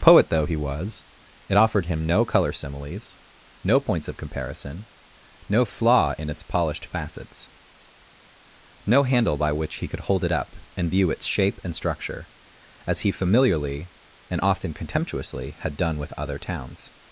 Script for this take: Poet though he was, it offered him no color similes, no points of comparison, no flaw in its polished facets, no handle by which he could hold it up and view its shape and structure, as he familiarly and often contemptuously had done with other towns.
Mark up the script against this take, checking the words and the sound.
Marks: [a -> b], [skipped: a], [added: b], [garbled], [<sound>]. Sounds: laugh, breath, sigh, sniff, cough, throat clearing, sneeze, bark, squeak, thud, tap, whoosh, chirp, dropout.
Poet though he was, it offered him no color similes, no points of comparison, no flaw in its polished facets, no handle by which he could hold it up and view its shape and structure, as he familiarly and often contemptuously had done with other towns.